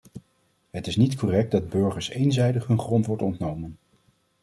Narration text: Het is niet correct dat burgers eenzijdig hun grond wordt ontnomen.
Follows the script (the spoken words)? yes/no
yes